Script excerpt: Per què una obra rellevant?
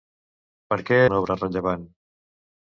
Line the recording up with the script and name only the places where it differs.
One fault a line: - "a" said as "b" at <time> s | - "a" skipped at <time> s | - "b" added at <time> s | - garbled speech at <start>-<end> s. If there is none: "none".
none